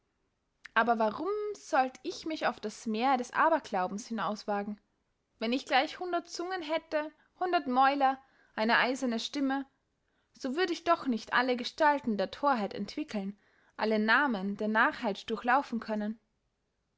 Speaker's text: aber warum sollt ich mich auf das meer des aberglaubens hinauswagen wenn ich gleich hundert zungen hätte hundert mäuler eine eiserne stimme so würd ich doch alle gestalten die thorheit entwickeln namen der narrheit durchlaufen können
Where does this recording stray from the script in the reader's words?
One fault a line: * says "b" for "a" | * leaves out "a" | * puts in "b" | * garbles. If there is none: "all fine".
* puts in "nicht"
* says "der" for "die"
* puts in "alle"